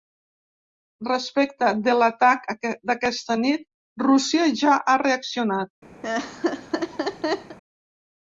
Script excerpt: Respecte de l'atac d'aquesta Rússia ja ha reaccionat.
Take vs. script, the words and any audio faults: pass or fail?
fail